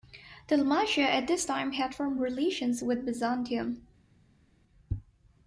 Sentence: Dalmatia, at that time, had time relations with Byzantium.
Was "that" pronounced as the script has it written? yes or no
no